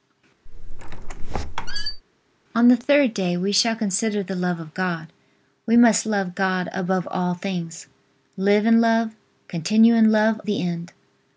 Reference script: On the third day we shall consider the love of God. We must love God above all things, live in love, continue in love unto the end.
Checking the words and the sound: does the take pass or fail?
fail